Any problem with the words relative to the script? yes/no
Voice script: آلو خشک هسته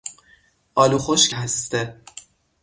no